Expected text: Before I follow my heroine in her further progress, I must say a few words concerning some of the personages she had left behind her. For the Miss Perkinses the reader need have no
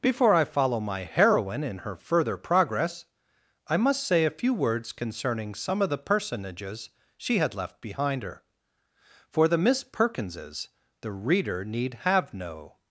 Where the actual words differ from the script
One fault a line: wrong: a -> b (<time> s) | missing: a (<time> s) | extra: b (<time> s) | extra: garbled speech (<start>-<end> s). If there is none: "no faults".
no faults